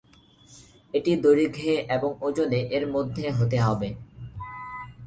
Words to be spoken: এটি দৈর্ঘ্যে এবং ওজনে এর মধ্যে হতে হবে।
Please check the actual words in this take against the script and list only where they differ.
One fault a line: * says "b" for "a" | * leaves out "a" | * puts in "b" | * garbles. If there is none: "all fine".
all fine